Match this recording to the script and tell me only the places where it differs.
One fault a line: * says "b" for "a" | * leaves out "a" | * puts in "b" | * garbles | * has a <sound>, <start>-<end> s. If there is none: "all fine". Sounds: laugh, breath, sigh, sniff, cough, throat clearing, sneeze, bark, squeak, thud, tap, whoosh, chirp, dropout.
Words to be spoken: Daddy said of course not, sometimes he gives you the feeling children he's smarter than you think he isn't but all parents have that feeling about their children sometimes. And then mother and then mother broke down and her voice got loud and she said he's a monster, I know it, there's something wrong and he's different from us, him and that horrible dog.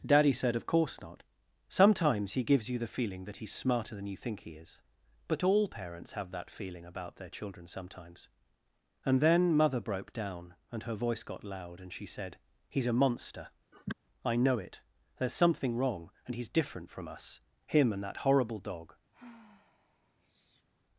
* says "that" for "children"
* says "is" for "isn't"
* leaves out "and then mother"
* has a sniff, 13.7-13.9 s
* has a sigh, 19.1-20.7 s